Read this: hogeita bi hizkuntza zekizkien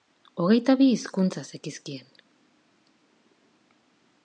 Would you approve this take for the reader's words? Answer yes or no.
yes